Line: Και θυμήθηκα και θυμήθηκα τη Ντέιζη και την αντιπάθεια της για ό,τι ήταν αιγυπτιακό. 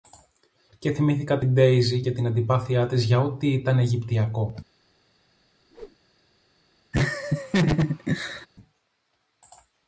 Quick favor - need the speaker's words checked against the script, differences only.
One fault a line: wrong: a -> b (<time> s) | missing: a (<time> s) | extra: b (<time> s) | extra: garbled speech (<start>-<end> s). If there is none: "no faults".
missing: και θυμήθηκα (1.4 s)